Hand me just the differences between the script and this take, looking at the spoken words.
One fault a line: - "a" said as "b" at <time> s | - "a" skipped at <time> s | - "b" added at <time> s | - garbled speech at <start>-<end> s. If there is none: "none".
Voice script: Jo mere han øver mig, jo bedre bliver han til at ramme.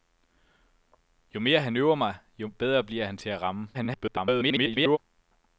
- garbled speech at 3.7-5.0 s